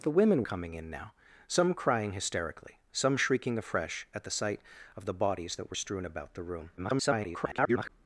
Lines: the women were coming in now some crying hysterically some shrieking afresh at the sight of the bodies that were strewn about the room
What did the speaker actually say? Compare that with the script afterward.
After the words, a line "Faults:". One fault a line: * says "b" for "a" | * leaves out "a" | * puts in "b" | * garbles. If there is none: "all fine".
the women coming in now some crying hysterically some shrieking afresh at the sight of the bodies that were strewn about the room [garbled]
Faults:
* leaves out "were"
* garbles